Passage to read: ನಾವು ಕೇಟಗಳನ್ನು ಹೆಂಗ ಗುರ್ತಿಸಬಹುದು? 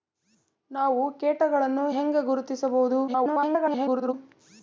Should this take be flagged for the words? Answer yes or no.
yes